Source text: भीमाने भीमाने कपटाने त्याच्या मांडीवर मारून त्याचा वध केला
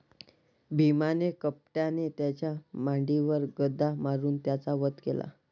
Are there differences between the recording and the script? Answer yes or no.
yes